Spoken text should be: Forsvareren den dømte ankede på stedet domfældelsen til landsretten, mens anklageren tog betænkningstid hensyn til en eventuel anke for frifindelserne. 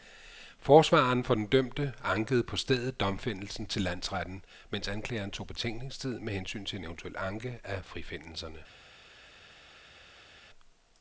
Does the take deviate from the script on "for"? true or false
true